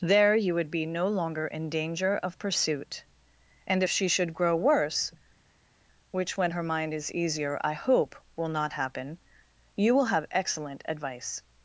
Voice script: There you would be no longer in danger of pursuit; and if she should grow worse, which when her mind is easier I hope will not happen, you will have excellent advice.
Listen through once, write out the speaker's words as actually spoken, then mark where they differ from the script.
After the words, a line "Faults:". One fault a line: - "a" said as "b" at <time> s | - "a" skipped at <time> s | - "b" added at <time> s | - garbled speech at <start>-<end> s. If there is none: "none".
There you would be no longer in danger of pursuit; and if she should grow worse, which when her mind is easier I hope will not happen, you will have excellent advice.
Faults:
none